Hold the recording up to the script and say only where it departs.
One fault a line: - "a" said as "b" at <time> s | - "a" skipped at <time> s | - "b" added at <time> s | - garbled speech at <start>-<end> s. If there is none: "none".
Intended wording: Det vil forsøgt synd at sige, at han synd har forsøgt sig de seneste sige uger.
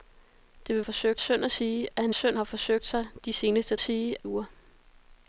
none